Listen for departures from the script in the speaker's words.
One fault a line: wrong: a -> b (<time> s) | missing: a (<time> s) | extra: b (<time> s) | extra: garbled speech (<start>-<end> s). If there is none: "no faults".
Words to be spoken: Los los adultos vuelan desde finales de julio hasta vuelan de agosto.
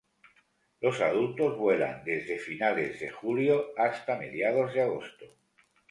missing: los (1.0 s)
wrong: vuelan -> mediados (4.1 s)